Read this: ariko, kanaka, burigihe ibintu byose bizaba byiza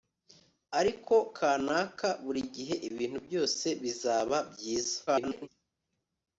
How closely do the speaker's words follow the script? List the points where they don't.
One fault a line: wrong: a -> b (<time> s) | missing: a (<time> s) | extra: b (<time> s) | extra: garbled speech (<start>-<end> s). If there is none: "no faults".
extra: garbled speech (5.1-5.5 s)